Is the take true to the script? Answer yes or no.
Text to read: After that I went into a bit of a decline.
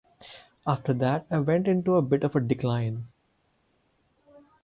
yes